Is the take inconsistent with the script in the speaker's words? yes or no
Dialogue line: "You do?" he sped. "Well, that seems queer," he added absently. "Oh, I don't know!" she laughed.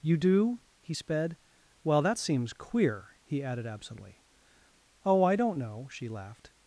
no